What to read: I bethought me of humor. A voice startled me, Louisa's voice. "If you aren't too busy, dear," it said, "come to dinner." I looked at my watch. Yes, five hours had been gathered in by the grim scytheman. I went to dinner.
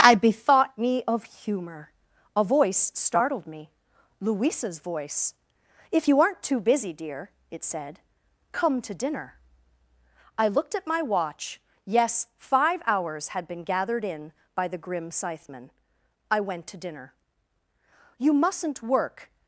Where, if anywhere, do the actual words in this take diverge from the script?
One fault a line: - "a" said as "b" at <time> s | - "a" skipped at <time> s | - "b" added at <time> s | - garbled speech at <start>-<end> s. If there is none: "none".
- "You mustn't work" added at 18.2 s